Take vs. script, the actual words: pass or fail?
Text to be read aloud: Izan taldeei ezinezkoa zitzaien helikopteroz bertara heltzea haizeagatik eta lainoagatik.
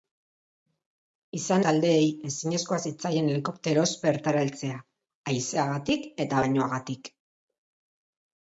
pass